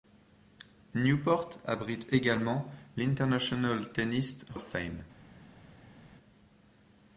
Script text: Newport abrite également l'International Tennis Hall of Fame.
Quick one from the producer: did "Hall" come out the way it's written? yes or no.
no